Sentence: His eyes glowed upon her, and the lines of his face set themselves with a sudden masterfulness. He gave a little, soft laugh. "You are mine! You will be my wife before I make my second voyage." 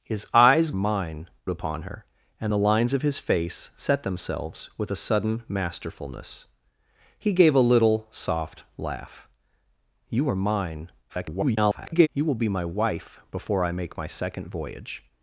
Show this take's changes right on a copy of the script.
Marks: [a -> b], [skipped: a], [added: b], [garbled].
His eyes [glowed -> mine] upon her, and the lines of his face set themselves with a sudden masterfulness. He gave a little, soft laugh. "You are mine! [garbled] You will be my wife before I make my second voyage."